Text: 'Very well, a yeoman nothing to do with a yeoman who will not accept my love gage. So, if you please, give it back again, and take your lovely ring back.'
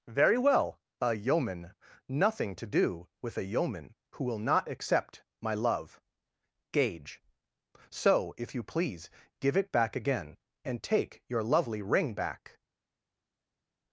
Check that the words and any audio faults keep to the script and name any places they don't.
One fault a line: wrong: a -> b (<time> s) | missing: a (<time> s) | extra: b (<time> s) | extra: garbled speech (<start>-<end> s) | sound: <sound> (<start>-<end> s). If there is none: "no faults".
no faults